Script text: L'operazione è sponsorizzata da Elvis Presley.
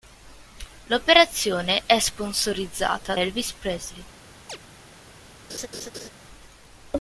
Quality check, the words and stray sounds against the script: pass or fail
fail